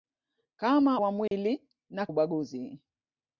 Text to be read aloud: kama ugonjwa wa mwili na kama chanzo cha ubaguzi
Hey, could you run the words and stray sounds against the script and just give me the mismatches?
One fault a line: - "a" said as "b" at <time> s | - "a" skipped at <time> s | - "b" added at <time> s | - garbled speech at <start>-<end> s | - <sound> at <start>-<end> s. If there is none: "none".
- "ugonjwa" skipped at 1.0 s
- dropout at 1.3-1.3 s
- "kama chanzo cha" skipped at 2.1 s